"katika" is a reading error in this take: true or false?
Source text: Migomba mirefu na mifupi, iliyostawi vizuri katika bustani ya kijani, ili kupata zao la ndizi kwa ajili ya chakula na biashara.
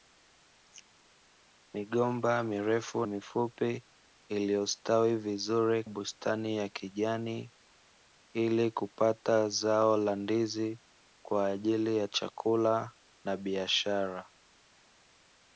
true